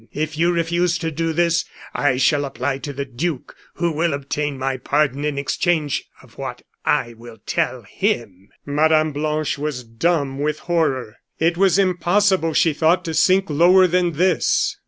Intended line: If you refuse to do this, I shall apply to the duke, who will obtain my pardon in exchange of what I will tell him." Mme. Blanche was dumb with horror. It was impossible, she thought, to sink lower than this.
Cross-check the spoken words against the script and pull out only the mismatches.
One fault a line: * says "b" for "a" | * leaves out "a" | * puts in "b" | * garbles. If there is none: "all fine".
all fine